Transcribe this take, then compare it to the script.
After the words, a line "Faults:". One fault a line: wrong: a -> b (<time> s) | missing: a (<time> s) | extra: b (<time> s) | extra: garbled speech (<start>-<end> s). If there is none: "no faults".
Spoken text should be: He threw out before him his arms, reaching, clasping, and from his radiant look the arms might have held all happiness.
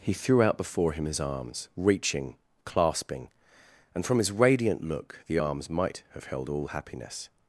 He threw out before him his arms, reaching, clasping, and from his radiant look the arms might have held all happiness.
Faults:
no faults